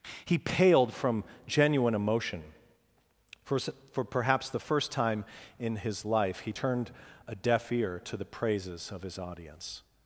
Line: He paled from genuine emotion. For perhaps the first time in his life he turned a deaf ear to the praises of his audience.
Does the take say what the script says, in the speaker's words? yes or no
no